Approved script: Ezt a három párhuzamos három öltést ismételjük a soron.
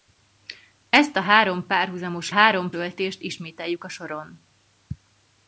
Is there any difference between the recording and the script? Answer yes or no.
no